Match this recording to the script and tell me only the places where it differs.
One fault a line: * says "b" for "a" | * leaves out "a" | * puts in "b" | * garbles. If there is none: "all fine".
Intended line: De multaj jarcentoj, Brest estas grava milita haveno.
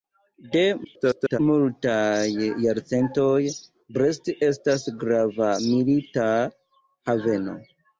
* garbles